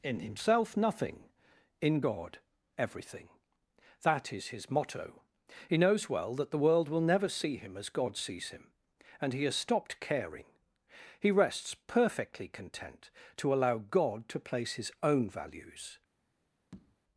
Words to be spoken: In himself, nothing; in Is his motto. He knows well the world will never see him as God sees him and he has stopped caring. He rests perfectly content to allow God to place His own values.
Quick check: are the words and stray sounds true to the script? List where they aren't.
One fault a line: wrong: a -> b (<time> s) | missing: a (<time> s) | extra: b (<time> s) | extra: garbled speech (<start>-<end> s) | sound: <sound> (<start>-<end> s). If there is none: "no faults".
extra: God everything That (2.0 s)
extra: that (6.4 s)
sound: tap (16.7-17.0 s)